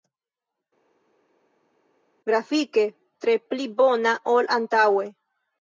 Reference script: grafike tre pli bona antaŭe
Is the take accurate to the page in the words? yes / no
no